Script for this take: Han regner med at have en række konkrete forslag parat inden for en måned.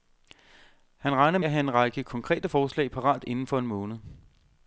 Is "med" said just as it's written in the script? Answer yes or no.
no